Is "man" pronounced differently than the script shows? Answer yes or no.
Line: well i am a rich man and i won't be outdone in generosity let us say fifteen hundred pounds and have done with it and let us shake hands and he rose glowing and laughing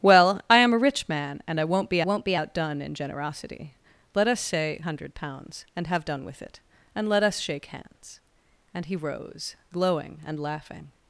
no